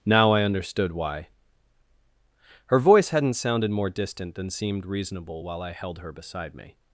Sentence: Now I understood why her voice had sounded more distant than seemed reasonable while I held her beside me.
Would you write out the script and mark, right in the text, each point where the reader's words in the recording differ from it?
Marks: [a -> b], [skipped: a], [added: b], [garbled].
Now I understood why her voice [had -> hadn't] sounded more distant than seemed reasonable while I held her beside me.